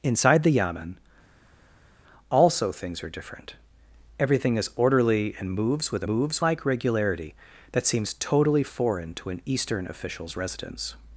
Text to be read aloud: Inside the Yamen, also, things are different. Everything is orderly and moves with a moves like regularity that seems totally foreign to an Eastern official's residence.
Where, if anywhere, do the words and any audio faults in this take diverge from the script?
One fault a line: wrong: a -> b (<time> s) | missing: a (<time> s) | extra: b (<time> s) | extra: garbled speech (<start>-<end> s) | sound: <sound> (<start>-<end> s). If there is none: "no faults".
no faults